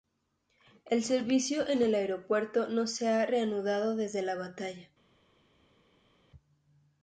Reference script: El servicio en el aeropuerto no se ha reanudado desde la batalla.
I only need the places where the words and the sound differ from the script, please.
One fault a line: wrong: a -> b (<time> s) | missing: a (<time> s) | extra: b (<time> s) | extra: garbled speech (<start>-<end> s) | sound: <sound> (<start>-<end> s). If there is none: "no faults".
no faults